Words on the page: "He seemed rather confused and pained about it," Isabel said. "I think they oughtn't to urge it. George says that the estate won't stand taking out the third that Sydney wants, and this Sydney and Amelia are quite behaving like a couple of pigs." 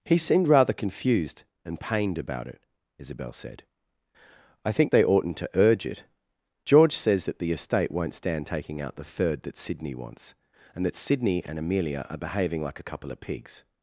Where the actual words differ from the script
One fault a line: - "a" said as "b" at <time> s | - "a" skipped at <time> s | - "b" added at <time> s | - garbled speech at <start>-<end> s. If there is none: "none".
- "this" said as "that" at 10.8 s
- "quite" skipped at 12.2 s